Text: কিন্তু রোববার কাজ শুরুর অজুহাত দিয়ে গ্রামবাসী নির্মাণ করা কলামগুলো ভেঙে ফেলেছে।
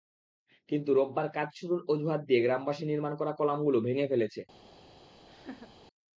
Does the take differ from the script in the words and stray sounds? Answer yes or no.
yes